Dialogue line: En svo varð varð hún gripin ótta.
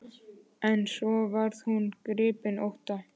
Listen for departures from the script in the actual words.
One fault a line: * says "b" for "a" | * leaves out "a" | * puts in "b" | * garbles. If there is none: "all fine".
* leaves out "varð"